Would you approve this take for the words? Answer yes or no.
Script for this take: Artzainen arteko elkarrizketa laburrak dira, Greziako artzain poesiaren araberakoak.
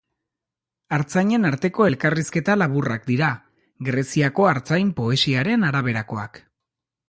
yes